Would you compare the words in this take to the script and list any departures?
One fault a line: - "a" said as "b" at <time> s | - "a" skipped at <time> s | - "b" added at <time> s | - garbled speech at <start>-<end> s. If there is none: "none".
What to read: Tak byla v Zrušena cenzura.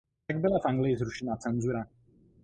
- "Anglii" added at 0.7 s